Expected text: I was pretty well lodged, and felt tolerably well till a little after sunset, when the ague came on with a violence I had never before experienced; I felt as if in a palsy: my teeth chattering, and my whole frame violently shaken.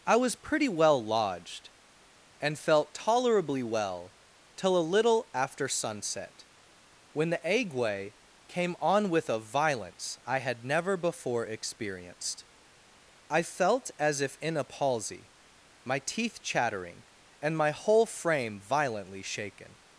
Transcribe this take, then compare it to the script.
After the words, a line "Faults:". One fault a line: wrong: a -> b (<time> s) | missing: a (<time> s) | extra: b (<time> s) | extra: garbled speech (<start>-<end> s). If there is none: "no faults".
I was pretty well lodged, and felt tolerably well till a little after sunset, when the ague came on with a violence I had never before experienced; I felt as if in a palsy: my teeth chattering, and my whole frame violently shaken.
Faults:
no faults